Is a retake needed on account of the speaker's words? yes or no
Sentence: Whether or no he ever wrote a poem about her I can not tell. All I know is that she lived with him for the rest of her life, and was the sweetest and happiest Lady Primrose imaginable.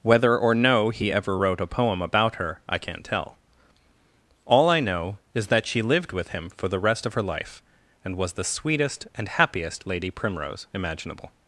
no